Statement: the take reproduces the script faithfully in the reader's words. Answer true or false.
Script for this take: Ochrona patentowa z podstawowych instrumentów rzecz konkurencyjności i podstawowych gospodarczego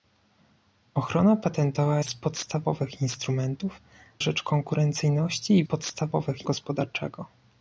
true